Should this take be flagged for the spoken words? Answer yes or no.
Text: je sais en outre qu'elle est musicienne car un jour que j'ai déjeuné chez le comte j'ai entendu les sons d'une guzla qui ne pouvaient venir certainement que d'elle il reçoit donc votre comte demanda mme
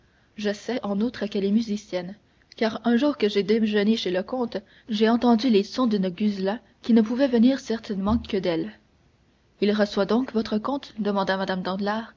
no